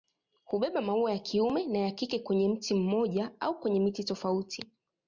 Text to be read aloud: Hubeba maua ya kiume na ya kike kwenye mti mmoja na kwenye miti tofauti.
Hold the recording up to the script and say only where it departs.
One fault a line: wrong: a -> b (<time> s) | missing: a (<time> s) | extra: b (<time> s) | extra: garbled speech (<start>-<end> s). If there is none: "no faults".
wrong: na -> au (3.4 s)